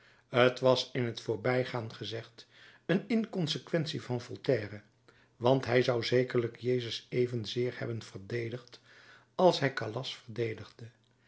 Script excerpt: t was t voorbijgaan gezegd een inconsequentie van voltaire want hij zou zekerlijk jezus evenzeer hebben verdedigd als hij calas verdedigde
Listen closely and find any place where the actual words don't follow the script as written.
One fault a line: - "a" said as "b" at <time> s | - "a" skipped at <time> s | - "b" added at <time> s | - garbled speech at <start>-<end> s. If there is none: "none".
- "in" added at 0.9 s